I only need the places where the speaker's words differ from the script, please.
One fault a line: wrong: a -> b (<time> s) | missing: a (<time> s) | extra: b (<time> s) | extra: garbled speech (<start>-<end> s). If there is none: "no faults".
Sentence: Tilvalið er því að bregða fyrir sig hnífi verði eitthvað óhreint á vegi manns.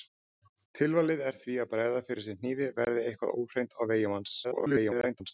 extra: garbled speech (4.4-5.3 s)